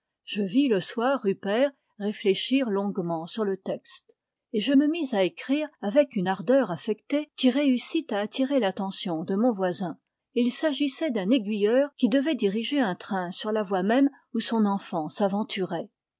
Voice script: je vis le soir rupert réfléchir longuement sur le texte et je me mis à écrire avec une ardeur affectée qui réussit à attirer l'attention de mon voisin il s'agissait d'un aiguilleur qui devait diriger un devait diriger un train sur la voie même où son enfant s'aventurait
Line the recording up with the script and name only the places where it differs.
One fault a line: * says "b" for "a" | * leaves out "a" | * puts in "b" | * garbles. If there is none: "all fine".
* leaves out "devait diriger un"